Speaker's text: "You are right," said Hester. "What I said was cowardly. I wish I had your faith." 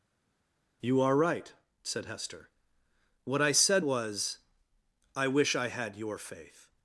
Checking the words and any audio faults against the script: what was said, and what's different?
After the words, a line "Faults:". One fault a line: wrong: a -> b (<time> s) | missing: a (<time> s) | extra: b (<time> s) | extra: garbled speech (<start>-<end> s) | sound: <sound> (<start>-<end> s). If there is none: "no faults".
"You are right," said Hester. "What I said was. I wish I had your faith."
Faults:
missing: cowardly (4.4 s)